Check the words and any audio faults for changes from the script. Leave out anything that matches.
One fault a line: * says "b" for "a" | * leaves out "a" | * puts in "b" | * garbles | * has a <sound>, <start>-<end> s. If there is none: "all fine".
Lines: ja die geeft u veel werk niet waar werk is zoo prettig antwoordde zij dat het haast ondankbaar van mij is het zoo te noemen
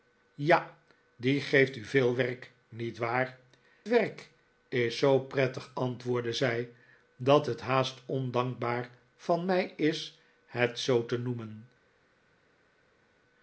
all fine